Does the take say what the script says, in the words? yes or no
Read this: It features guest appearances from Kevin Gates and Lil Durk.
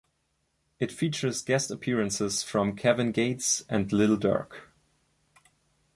yes